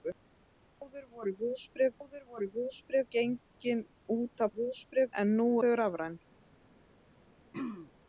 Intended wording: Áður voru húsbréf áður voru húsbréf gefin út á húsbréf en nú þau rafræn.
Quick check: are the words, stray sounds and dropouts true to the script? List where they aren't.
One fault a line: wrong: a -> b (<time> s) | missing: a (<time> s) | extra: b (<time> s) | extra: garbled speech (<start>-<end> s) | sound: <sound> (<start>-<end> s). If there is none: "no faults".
sound: throat clearing (7.5-7.9 s)